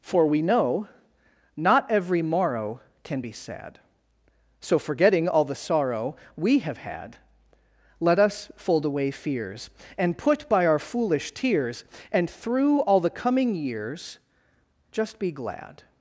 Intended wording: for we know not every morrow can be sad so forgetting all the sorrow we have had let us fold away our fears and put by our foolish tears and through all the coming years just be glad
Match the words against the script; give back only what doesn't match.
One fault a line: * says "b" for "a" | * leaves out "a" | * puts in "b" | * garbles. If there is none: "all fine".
* leaves out "our"